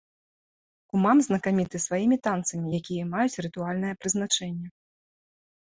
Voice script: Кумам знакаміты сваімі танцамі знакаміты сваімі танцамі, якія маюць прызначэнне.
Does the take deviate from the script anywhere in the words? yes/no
yes